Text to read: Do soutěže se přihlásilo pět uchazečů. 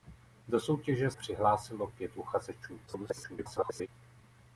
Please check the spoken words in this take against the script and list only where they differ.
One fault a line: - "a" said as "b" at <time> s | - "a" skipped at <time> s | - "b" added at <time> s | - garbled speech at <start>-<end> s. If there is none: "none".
- "se" skipped at 1.1 s
- garbled speech at 2.9-3.9 s